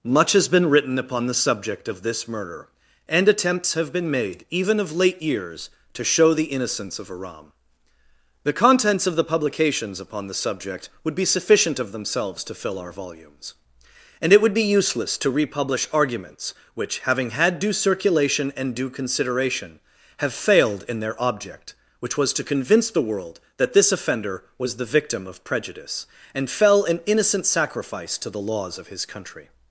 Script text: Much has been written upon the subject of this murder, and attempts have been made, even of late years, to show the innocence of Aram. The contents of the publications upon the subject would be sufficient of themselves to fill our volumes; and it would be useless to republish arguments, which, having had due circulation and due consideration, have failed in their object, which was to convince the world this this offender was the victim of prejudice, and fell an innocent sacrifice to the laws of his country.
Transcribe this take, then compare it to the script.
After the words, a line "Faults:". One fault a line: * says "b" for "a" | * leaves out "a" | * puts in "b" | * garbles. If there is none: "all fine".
Much has been written upon the subject of this murder, and attempts have been made, even of late years, to show the innocence of Aram. The contents of the publications upon the subject would be sufficient of themselves to fill our volumes; and it would be useless to republish arguments, which, having had due circulation and due consideration, have failed in their object, which was to convince the world that this offender was the victim of prejudice, and fell an innocent sacrifice to the laws of his country.
Faults:
* says "that" for "this"